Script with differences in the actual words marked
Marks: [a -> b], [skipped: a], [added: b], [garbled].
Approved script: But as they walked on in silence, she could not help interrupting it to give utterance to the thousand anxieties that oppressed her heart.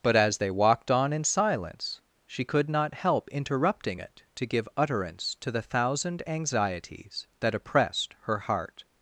But as they walked on in silence, she could not help interrupting it to give utterance to the thousand anxieties that oppressed her heart.